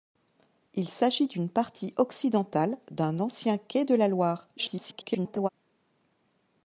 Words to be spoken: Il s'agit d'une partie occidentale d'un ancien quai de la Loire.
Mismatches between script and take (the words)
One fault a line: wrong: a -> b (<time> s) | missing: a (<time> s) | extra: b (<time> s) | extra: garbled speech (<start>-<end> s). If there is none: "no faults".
extra: garbled speech (4.6-5.5 s)